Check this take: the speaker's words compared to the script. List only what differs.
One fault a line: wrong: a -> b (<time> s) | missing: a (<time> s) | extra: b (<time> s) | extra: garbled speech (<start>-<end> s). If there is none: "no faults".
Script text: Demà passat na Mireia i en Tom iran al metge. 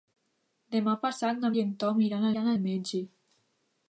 missing: Mireia (1.5 s)
extra: iran (2.3 s)